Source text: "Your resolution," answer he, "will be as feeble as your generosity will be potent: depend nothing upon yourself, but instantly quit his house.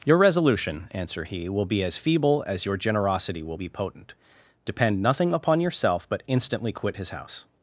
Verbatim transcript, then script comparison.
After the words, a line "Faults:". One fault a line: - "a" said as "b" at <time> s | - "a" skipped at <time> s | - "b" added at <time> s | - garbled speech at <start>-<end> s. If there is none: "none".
"Your resolution," answer he, "will be as feeble as your generosity will be potent: depend nothing upon yourself, but instantly quit his house.
Faults:
none